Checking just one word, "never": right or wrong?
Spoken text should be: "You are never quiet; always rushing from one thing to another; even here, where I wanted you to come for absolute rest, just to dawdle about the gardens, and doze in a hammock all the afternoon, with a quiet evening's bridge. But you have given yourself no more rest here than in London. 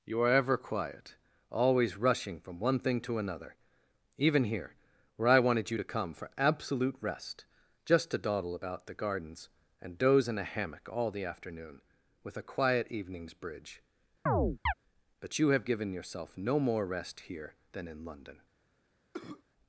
wrong